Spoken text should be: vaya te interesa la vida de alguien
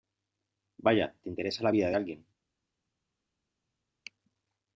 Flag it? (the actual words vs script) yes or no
no